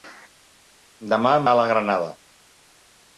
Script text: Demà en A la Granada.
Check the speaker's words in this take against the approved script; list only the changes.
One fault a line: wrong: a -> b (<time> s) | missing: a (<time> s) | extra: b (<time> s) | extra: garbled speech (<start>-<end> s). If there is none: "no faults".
no faults